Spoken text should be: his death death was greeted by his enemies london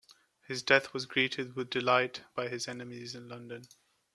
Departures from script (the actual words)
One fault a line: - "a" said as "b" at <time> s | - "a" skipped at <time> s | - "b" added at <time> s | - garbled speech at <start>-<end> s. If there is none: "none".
- "death" skipped at 0.9 s
- "with delight" added at 1.6 s
- "in" added at 3.1 s